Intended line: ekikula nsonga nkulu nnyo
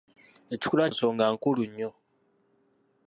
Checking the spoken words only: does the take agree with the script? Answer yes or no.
yes